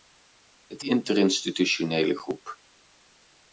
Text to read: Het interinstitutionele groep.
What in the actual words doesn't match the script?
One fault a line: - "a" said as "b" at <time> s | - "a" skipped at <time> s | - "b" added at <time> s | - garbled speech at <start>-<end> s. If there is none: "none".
none